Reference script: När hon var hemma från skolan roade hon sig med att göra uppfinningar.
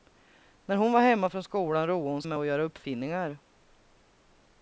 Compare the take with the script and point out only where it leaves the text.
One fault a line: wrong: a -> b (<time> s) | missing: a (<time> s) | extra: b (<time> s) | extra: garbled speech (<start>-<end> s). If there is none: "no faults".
missing: sig (2.2 s)